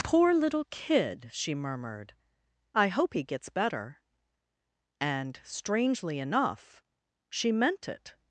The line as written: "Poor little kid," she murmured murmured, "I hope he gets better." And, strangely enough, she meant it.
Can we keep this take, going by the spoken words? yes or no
no